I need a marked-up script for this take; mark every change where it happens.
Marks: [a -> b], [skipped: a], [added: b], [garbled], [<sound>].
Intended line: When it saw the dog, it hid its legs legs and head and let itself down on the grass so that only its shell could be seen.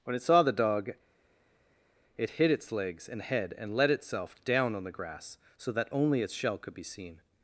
When it saw the dog, it hid its legs [skipped: legs] and head and let itself down on the grass so that only its shell could be seen.